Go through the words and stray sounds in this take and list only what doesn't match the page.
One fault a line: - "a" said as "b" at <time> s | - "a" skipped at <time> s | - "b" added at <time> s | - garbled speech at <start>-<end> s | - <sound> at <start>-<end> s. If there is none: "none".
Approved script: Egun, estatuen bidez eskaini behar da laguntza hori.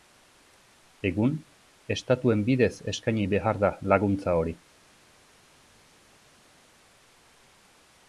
none